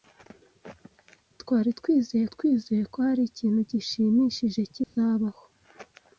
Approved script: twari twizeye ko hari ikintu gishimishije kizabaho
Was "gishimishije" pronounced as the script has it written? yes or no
yes